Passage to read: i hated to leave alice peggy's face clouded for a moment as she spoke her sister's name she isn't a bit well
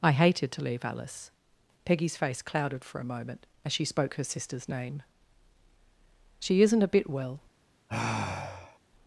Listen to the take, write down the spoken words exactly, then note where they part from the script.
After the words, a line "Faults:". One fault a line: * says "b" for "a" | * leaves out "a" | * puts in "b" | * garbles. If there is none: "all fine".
i hated to leave alice peggy's face clouded for a moment as she spoke her sister's name she isn't a bit well
Faults:
all fine